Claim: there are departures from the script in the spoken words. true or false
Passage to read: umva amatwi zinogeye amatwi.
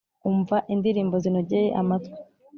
true